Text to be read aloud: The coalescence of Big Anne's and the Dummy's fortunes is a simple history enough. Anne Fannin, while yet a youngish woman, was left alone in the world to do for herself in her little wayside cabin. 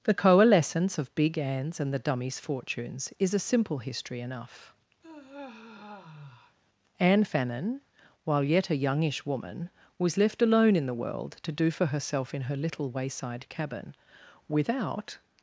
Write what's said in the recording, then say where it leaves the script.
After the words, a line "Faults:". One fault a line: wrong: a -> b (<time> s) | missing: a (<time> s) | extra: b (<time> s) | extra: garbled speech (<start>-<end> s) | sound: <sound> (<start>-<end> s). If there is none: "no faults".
The coalescence of Big Anne's and the Dummy's fortunes is a simple history enough. Anne Fannin, while yet a youngish woman, was left alone in the world to do for herself in her little wayside cabin. Without
Faults:
sound: sigh (5.0-6.6 s)
extra: Without (14.5 s)